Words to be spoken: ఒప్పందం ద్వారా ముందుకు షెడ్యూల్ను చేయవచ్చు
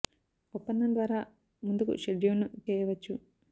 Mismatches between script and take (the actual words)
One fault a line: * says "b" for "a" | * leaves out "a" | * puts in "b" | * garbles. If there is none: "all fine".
all fine